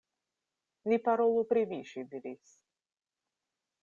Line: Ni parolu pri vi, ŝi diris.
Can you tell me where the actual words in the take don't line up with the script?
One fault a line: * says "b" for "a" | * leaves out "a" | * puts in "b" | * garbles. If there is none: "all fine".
all fine